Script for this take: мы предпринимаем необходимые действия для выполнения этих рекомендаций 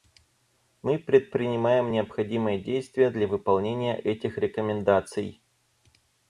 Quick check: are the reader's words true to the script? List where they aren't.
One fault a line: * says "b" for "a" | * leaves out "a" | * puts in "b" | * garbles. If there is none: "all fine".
all fine